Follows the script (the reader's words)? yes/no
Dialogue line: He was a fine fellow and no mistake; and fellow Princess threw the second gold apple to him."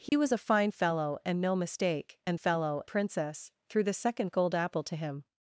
yes